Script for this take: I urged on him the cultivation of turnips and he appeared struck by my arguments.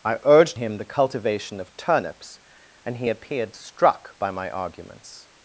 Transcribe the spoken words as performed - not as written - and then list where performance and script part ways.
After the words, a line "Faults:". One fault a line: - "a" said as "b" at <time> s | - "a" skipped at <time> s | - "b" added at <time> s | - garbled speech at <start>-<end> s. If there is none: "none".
I urged him the cultivation of turnips and he appeared struck by my arguments.
Faults:
- "on" skipped at 0.6 s